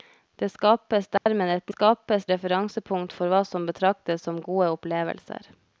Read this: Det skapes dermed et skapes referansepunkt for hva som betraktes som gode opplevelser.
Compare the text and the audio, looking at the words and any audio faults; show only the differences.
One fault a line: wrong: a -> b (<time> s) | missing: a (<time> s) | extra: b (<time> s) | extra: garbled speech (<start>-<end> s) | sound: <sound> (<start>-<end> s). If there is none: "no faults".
sound: dropout (1.2-1.3 s)